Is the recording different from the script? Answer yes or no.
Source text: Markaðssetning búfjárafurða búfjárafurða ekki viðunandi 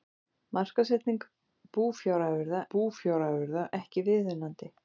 no